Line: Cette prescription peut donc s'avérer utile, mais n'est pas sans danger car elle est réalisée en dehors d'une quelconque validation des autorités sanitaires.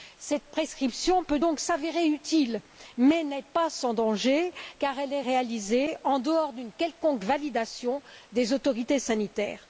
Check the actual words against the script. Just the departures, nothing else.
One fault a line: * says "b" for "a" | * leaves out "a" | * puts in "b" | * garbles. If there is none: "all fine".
all fine